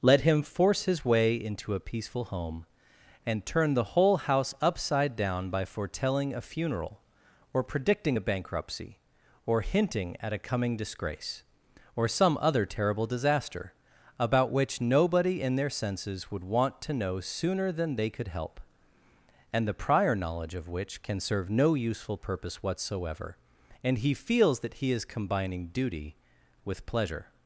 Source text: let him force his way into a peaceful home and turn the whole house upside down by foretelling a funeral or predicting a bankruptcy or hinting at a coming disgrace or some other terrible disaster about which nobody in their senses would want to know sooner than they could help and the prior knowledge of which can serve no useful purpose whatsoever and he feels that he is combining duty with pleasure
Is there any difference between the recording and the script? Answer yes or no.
no